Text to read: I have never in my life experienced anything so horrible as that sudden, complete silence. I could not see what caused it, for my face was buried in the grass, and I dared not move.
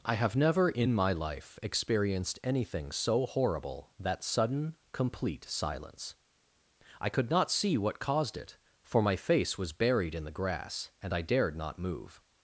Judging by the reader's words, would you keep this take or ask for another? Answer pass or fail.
fail